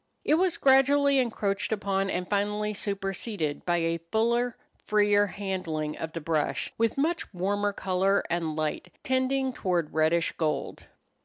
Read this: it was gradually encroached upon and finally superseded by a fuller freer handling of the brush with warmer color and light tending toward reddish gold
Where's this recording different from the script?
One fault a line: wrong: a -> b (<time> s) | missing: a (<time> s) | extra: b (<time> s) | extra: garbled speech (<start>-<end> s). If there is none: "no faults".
extra: much (7.0 s)